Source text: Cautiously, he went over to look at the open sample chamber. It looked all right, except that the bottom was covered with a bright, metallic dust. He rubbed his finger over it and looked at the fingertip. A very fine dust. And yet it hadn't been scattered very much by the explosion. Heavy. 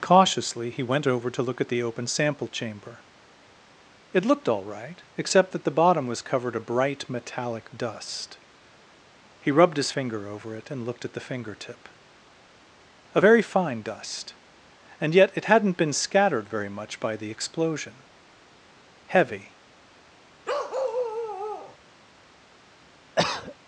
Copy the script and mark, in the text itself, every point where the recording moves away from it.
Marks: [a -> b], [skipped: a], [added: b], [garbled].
Cautiously, he went over to look at the open sample chamber. It looked all right, except that the bottom was covered [skipped: with] a bright, metallic dust. He rubbed his finger over it and looked at the fingertip. A very fine dust. And yet it hadn't been scattered very much by the explosion. Heavy.